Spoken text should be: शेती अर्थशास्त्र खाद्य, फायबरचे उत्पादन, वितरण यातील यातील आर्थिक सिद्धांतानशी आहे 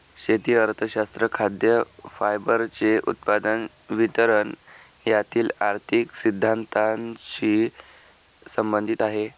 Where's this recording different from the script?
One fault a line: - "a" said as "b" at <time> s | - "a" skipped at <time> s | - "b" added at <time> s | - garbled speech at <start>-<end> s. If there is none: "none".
- "यातील" skipped at 5.5 s
- "संबंधित" added at 8.5 s